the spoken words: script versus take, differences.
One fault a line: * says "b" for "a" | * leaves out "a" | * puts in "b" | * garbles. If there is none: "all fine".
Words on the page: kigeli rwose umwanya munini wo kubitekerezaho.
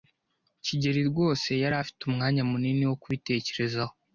* puts in "yari afite"